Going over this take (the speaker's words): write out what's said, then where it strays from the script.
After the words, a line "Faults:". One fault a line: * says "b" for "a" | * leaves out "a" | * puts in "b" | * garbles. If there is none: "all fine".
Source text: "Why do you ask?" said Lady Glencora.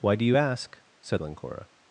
"Why do you ask?" said Glencora.
Faults:
* leaves out "Lady"